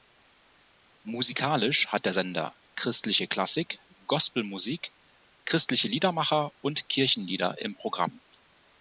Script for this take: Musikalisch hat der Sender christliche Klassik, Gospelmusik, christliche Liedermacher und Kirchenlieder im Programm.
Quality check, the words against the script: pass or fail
pass